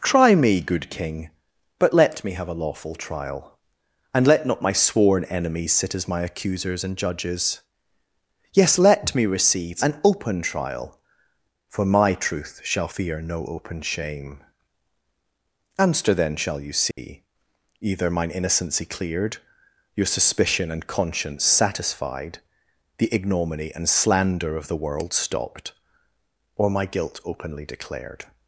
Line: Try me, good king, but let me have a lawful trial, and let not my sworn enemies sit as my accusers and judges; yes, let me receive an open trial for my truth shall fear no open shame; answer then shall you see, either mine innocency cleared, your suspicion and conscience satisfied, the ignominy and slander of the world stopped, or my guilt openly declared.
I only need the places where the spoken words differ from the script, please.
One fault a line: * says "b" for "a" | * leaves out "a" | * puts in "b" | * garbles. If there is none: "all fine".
all fine